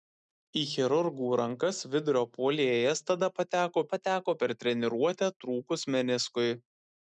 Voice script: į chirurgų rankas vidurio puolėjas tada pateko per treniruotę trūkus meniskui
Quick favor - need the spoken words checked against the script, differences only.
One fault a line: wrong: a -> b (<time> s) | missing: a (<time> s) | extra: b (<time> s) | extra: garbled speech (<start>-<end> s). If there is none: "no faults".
extra: pateko (3.9 s)